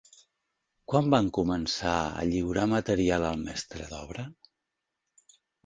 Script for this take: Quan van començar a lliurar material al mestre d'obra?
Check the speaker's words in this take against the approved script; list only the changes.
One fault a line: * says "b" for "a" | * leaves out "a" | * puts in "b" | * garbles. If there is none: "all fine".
all fine